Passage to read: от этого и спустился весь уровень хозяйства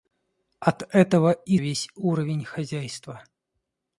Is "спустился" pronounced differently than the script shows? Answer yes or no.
yes